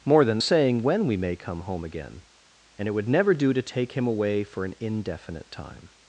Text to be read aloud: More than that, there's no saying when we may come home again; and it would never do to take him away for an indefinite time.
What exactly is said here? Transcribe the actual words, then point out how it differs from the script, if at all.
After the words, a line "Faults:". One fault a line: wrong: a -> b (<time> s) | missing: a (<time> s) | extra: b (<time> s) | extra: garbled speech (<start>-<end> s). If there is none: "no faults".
More than saying when we may come home again; and it would never do to take him away for an indefinite time.
Faults:
missing: that there's no (0.4 s)